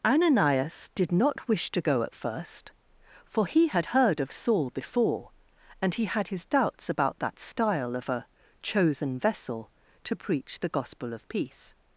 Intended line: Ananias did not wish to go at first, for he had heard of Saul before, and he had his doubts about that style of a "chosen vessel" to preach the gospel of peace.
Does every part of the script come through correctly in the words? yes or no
yes